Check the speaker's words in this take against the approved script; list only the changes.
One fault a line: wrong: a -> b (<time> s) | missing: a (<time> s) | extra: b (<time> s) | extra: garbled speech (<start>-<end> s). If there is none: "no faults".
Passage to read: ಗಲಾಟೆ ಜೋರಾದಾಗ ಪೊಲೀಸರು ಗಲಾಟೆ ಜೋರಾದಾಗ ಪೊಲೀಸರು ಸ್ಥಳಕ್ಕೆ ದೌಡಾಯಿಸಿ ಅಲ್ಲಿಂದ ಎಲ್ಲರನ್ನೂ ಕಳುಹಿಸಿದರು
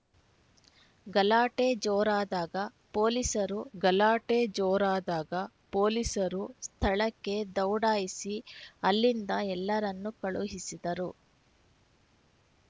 no faults